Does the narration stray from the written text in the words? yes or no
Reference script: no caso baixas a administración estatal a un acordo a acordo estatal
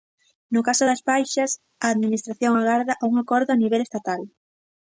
yes